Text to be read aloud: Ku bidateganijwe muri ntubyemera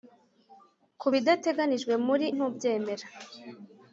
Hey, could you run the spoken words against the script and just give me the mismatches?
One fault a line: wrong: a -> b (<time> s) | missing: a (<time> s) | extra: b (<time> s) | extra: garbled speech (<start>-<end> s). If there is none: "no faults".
no faults